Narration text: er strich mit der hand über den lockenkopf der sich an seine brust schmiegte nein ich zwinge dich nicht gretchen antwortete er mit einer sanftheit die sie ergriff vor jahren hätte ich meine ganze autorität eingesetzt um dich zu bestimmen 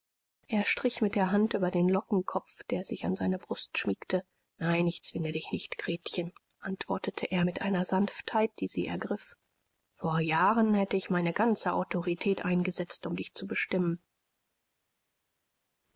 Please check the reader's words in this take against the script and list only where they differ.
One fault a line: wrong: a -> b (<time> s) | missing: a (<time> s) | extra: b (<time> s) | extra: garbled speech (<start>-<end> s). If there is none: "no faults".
no faults